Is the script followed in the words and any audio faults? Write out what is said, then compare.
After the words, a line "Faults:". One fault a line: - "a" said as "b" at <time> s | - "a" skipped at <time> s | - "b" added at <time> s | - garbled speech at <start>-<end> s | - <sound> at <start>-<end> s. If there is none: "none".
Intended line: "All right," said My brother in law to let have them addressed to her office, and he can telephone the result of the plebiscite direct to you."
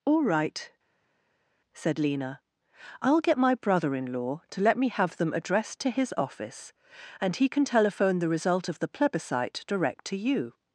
"All right," said Lena, "I'll get my brother in law to let me have them addressed to his office, and he can telephone the result of the plebiscite direct to you."
Faults:
- "Lena I'll get" added at 2.0 s
- "me" added at 4.8 s
- "her" said as "his" at 5.9 s